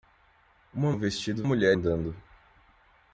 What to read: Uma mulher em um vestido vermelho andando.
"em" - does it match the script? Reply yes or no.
no